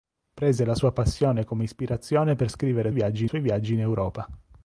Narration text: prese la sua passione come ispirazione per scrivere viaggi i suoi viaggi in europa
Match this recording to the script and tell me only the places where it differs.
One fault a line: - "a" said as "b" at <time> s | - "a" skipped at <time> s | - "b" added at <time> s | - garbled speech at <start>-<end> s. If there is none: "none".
none